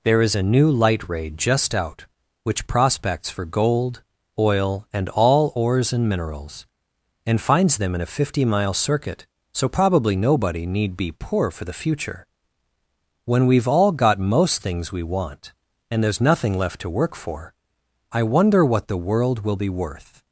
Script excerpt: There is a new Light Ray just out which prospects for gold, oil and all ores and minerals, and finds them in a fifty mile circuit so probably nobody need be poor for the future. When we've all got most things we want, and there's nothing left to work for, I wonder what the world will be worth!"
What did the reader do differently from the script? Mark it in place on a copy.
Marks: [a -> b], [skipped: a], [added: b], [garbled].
There is a new Light Ray just out which prospects for gold, oil and all ores and minerals, and finds them in a fifty mile circuit so probably nobody need be poor for the future. When we've all got most things we want, and there's nothing left to work for, I wonder what the world will be worth!"